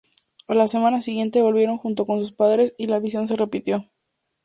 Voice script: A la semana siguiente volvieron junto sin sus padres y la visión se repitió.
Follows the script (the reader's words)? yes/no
no